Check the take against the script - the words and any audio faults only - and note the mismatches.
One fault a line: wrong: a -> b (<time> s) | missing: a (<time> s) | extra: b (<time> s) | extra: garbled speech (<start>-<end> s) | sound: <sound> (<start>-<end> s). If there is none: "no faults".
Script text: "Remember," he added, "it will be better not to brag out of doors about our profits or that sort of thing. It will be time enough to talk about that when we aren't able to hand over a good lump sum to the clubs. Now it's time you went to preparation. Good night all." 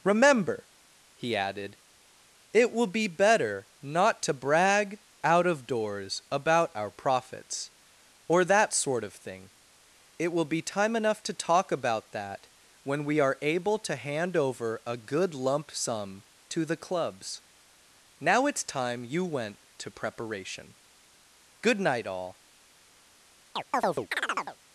wrong: aren't -> are (13.2 s)
sound: chirp (23.6-24.6 s)